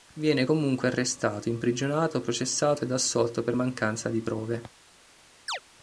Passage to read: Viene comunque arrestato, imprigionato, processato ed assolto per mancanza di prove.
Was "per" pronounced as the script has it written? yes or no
yes